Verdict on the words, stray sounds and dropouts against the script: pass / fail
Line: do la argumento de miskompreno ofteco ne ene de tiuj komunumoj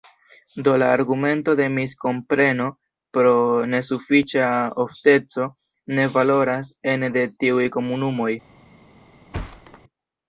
fail